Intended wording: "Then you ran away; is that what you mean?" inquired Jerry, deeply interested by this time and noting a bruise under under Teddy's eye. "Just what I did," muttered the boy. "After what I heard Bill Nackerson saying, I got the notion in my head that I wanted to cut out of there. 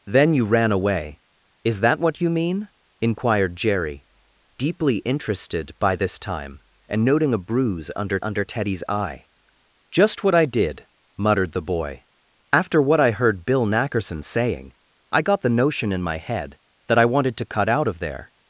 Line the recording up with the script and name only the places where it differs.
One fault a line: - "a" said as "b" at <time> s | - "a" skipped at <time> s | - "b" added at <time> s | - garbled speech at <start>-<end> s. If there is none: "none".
none